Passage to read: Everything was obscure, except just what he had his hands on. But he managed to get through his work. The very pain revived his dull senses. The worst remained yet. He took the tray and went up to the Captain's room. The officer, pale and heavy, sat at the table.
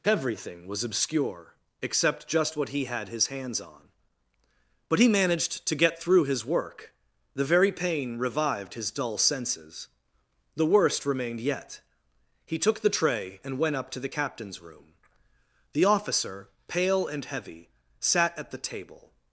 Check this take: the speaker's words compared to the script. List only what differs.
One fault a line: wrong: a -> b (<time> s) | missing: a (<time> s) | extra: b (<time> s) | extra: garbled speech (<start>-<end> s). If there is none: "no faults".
no faults